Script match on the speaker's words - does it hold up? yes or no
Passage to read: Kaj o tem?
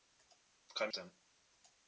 yes